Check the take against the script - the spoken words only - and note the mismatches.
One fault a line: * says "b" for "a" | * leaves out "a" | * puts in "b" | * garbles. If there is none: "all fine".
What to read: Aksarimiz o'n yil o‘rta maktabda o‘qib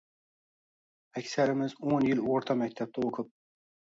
all fine